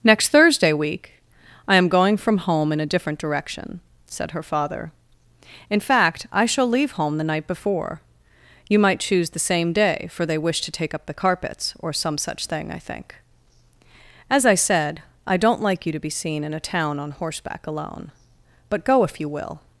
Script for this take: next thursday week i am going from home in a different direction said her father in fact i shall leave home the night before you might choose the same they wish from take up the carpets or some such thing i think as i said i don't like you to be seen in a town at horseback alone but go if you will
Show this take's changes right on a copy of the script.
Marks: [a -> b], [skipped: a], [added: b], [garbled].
next thursday week i am going from home in a different direction said her father in fact i shall leave home the night before you might choose the same [added: day for] they wish [from -> to] take up the carpets or some such thing i think as i said i don't like you to be seen in a town [at -> on] horseback alone but go if you will